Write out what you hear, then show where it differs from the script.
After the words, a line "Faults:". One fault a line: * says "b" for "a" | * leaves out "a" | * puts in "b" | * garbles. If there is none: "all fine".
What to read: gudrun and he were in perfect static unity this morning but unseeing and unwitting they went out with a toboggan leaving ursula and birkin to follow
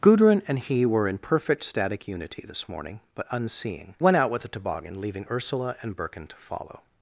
gudrun and he were in perfect static unity this morning but unseeing went out with a toboggan leaving ursula and birkin to follow
Faults:
* leaves out "and unwitting they"